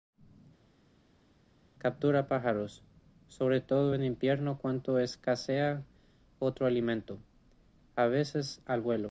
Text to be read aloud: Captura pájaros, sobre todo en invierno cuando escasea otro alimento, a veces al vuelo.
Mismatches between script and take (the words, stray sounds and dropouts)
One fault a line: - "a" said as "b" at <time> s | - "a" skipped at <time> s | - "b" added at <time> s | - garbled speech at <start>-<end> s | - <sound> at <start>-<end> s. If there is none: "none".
none